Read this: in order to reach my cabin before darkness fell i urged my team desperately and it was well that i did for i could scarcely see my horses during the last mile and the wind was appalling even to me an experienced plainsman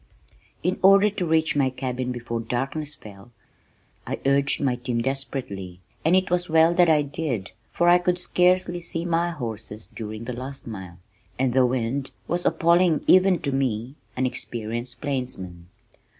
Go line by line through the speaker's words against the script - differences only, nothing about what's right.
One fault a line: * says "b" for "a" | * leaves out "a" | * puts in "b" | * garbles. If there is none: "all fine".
all fine